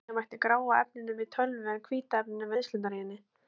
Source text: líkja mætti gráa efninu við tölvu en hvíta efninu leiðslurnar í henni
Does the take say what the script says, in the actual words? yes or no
yes